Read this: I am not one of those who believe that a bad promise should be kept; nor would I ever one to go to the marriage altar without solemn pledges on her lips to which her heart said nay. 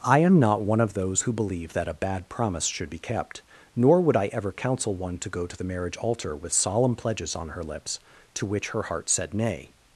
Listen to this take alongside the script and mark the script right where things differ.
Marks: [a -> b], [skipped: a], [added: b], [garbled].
I am not one of those who believe that a bad promise should be kept; nor would I ever [added: counsel] one to go to the marriage altar [without -> with] solemn pledges on her lips to which her heart said nay.